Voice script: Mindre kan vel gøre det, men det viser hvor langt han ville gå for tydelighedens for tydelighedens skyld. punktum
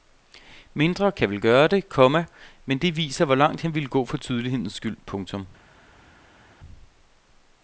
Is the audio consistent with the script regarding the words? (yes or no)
no